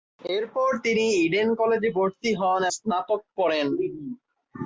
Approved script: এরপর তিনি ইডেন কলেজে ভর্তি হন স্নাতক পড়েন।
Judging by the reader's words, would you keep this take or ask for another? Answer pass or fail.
pass